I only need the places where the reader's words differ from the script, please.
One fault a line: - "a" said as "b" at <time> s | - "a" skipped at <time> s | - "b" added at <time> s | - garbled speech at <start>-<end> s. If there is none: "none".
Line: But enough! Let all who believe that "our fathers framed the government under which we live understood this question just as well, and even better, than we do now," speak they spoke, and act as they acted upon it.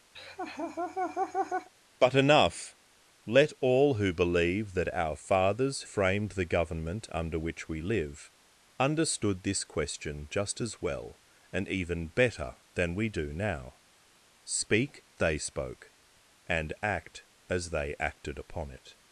none